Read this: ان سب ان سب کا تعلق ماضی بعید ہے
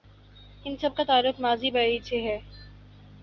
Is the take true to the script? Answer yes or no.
no